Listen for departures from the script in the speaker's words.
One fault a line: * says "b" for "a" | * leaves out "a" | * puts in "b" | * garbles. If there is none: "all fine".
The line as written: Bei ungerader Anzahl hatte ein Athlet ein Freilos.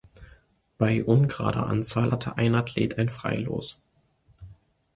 all fine